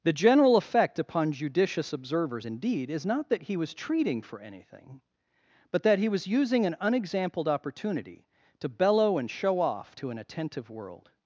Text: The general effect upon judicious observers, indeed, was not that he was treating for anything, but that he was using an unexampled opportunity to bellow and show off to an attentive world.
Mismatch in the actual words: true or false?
true